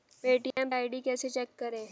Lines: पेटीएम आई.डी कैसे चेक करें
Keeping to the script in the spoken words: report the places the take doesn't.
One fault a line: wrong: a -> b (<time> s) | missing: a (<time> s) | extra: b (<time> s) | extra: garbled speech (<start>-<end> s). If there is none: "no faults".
no faults